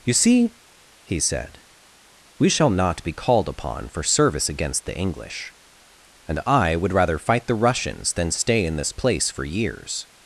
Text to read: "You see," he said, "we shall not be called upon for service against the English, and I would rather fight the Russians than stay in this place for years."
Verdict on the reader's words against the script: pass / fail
pass